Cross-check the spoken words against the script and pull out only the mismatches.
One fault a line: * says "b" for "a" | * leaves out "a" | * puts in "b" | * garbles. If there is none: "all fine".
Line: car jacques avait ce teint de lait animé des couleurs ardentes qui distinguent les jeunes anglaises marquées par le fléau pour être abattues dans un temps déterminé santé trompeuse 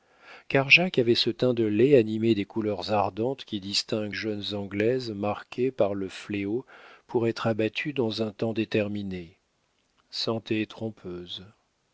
* leaves out "les"